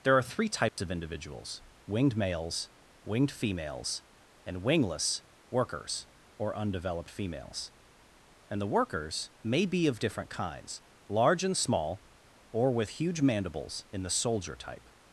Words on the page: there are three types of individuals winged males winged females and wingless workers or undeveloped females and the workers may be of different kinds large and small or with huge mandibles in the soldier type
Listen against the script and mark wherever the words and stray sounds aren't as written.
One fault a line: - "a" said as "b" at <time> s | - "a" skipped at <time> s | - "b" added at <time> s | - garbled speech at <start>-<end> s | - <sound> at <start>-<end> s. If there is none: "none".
- dropout at 0.7-0.8 s